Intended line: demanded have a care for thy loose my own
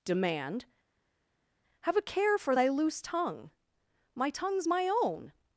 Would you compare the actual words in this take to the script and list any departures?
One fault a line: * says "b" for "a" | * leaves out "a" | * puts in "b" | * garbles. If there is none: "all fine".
* says "demand" for "demanded"
* puts in "tongue my tongue's"